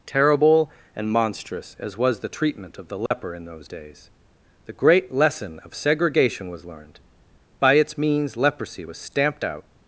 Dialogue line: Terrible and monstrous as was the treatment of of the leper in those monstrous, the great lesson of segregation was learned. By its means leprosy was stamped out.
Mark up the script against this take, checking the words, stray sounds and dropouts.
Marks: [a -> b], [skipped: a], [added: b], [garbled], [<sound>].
Terrible and monstrous as was the treatment of [skipped: of] the leper [dropout] in those [monstrous, -> days] the great lesson of segregation was learned. By its means leprosy was stamped out.